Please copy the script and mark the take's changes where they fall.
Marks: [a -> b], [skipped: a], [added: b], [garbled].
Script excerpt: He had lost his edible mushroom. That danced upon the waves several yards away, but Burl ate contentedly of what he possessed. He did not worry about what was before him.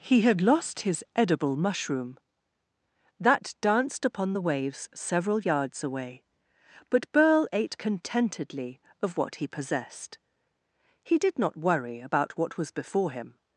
He had lost his edible mushroom. That danced upon the waves several yards away, but Burl ate contentedly of what he possessed. He did not worry about what was before him.